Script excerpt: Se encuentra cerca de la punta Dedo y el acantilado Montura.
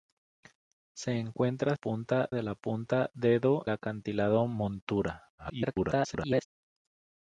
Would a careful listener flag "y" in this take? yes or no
yes